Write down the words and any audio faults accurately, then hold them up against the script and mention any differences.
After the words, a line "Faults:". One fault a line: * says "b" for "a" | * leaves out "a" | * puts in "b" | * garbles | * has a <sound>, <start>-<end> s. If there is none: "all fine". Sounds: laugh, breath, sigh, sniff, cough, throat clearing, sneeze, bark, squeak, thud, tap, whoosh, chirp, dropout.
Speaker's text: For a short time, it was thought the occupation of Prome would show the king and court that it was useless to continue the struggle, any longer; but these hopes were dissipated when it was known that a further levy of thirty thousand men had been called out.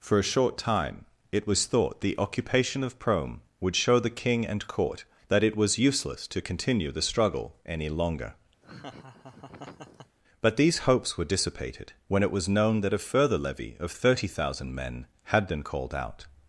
For a short time, it was thought the occupation of Prome would show the king and court that it was useless to continue the struggle, any longer; but these hopes were dissipated when it was known that a further levy of thirty thousand men had been called out.
Faults:
* has a laugh, 8.6-10.2 s